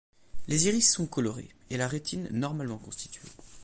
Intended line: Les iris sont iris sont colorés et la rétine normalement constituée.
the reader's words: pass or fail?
fail